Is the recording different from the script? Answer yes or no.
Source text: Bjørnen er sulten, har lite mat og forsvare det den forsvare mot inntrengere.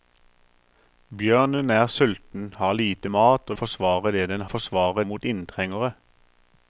no